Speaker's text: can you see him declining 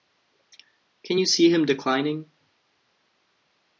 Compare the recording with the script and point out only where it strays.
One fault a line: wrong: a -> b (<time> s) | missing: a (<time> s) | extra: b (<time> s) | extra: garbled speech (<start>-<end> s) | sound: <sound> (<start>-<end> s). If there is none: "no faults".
no faults